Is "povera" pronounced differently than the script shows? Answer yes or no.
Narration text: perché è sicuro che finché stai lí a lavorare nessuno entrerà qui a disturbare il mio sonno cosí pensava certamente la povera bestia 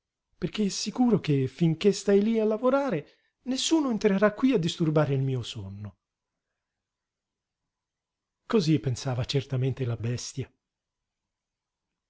yes